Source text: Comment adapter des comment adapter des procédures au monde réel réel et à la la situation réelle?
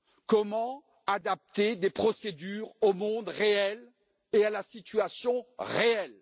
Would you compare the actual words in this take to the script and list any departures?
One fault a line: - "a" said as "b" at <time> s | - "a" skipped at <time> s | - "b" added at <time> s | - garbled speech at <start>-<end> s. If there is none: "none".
- "comment adapter des" skipped at 1.9 s
- "réel" skipped at 3.9 s
- "la" skipped at 4.6 s